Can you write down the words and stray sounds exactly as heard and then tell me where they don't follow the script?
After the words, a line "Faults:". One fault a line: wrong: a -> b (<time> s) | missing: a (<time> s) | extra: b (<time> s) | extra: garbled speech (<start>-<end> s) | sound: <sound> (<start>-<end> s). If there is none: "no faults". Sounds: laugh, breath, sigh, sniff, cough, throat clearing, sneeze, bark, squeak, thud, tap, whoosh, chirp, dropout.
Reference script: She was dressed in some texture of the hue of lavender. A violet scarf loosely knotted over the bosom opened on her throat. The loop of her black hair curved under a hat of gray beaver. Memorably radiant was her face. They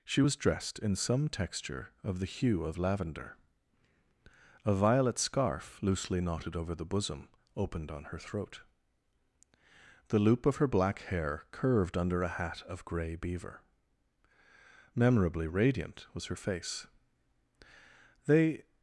She was dressed in some texture of the hue of lavender. A violet scarf loosely knotted over the bosom opened on her throat. The loop of her black hair curved under a hat of gray beaver. Memorably radiant was her face. They
Faults:
no faults